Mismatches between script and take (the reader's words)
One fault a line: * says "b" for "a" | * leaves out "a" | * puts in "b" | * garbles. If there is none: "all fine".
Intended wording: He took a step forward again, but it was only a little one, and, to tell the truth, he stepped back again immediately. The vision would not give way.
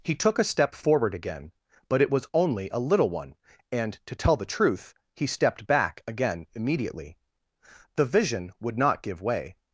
all fine